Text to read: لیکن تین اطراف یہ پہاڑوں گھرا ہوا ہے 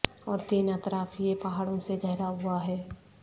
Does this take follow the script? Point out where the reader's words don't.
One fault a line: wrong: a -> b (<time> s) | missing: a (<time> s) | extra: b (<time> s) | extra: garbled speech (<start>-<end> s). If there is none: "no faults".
wrong: لیکن -> اور (0.2 s)
extra: سے (1.8 s)